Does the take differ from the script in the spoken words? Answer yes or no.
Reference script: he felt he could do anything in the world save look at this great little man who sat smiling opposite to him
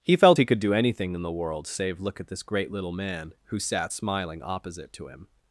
no